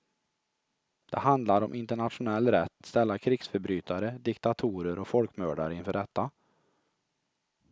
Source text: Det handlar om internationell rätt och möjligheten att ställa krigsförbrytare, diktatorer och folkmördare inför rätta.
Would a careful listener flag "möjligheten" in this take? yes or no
yes